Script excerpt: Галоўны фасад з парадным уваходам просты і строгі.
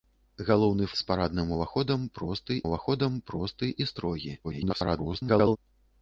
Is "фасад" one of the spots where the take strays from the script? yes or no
yes